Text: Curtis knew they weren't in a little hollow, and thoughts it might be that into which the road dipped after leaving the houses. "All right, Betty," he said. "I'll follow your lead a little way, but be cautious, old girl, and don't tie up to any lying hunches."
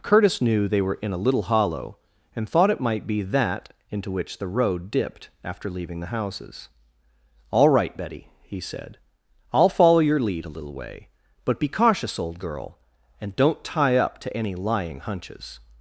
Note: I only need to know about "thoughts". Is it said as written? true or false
false